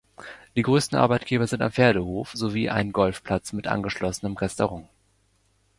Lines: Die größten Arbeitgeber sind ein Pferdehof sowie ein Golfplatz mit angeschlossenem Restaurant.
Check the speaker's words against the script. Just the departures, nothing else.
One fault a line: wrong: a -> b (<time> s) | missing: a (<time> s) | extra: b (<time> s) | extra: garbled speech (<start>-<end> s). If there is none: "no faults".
no faults